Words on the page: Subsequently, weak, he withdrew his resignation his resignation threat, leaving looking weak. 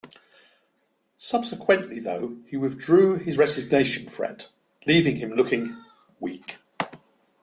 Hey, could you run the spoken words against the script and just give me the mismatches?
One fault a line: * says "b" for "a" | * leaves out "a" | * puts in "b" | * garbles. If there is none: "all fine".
* says "though" for "weak"
* leaves out "his resignation"
* puts in "him"